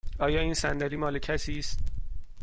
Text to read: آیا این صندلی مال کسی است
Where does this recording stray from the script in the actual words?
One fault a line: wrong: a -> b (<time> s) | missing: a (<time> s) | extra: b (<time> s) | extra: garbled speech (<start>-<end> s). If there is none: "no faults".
no faults